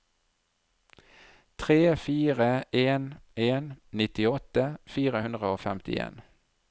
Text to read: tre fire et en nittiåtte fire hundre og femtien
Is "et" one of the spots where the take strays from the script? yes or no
yes